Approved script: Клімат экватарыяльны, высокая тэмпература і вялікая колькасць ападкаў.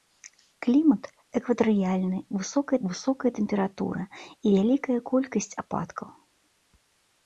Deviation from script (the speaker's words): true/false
true